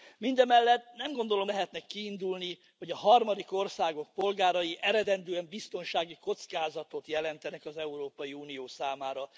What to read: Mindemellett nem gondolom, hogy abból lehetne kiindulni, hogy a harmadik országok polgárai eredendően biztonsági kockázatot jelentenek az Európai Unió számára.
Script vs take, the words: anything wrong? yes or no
yes